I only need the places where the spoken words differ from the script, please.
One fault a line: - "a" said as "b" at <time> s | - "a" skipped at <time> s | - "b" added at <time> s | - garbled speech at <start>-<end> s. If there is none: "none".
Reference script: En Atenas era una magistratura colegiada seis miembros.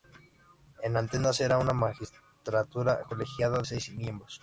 none